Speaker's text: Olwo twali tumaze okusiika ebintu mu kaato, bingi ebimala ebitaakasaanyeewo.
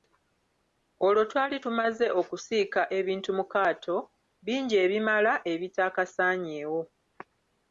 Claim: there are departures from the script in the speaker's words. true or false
false